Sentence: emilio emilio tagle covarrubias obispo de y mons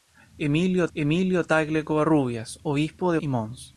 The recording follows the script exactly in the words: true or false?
true